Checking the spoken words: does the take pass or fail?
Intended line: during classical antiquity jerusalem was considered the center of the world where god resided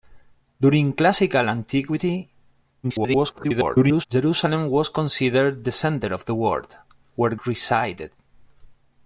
fail